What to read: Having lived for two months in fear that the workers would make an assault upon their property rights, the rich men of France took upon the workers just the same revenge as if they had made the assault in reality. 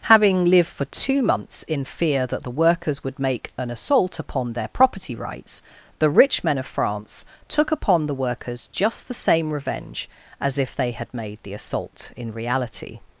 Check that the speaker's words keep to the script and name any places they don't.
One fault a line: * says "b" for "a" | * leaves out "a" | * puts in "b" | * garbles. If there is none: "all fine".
all fine